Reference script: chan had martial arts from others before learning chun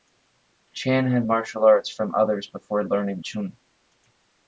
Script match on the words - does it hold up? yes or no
yes